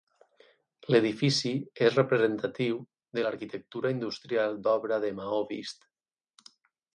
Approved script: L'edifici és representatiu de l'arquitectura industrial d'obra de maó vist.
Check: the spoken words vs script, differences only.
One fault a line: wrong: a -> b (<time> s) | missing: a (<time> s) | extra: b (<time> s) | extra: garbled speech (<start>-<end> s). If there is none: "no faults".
no faults